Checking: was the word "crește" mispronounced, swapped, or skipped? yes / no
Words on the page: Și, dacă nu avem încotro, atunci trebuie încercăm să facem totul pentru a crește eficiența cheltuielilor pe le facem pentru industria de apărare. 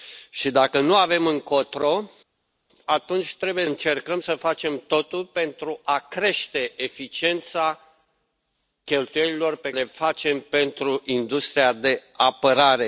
no